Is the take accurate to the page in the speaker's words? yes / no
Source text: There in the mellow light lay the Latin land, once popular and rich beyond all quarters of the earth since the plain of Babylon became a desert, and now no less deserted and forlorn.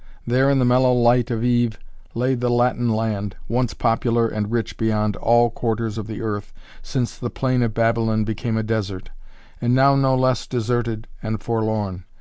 no